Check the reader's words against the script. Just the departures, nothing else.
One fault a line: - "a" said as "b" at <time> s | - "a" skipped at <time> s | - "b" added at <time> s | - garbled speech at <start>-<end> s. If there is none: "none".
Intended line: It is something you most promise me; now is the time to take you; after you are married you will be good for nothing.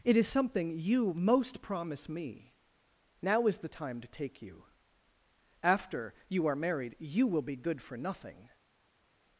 none